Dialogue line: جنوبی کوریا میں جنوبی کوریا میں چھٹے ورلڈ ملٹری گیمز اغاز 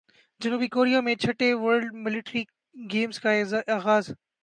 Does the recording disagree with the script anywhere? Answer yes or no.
yes